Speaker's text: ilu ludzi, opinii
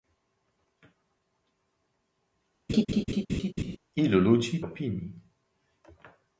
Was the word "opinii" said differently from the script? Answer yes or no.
no